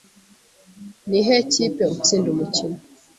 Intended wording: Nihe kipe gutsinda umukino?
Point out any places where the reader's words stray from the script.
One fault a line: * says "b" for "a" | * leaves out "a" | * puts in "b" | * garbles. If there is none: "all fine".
all fine